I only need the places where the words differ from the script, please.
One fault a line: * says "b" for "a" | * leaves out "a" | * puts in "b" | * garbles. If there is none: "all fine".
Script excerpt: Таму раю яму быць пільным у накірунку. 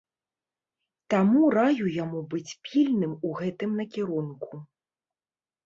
* puts in "гэтым"